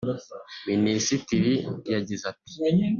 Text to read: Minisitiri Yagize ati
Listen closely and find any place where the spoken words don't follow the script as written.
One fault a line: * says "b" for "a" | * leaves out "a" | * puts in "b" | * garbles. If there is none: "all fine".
all fine